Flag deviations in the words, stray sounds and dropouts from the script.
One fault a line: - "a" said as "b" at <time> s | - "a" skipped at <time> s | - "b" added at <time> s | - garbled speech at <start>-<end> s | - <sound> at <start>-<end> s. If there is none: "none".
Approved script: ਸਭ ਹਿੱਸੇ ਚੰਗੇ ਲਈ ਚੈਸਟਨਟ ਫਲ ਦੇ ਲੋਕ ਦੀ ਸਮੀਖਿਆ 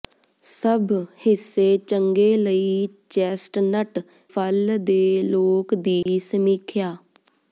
- dropout at 6.0-6.1 s